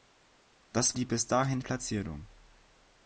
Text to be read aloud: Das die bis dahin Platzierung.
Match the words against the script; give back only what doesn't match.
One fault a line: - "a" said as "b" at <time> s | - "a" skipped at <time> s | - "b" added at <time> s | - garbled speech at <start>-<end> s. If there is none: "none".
none